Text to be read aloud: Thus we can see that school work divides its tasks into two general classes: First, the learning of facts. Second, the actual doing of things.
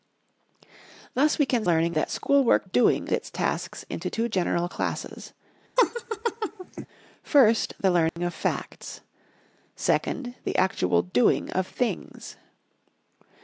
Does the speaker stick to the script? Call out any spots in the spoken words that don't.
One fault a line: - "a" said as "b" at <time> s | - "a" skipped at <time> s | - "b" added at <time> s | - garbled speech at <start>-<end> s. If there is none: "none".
- "see" said as "learning" at 1.6 s
- "divides" said as "doing" at 2.6 s